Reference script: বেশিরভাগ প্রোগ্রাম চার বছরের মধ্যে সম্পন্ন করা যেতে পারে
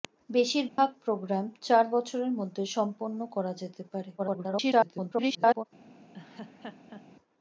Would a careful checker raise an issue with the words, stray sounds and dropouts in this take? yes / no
yes